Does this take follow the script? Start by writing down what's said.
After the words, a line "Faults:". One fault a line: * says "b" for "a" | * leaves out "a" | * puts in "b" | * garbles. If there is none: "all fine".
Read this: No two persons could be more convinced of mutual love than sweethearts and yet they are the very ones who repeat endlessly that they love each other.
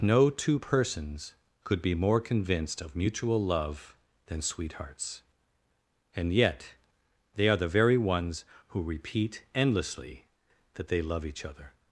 No two persons could be more convinced of mutual love than sweethearts and yet they are the very ones who repeat endlessly that they love each other.
Faults:
all fine